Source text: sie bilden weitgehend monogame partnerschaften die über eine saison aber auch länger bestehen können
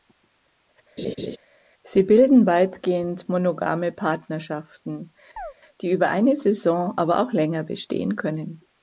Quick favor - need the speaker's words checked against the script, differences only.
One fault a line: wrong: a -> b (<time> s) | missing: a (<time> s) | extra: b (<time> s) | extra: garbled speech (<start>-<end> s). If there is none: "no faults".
no faults